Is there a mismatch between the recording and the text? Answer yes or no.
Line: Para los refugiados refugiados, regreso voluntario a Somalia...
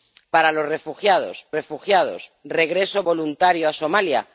no